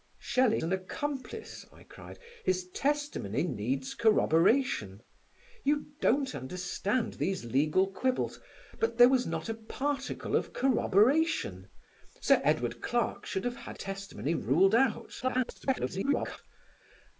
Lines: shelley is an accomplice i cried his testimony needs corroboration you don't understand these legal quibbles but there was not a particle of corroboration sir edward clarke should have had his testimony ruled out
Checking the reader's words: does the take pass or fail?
fail